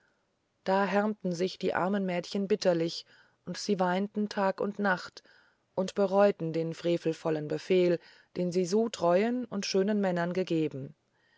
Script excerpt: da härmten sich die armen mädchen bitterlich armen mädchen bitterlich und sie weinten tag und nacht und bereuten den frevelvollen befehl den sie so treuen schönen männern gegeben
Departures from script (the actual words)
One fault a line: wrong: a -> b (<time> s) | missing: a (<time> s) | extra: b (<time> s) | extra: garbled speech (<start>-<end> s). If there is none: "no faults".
missing: armen mädchen bitterlich (3.0 s)
extra: und (9.4 s)